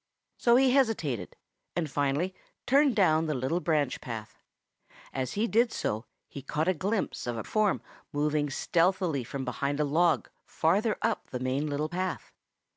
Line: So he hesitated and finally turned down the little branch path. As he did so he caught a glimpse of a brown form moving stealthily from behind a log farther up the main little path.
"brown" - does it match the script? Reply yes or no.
no